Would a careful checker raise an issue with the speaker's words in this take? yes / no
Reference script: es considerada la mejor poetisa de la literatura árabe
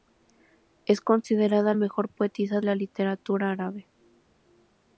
yes